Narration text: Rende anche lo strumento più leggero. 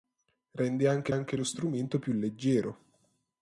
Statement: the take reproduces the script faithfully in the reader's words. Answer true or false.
false